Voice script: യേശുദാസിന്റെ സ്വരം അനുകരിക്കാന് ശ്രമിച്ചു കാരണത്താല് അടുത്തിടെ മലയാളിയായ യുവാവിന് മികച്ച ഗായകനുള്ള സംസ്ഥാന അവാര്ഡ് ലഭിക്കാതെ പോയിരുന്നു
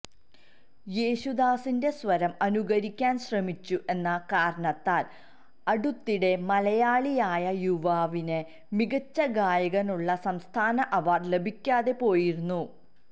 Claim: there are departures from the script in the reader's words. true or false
true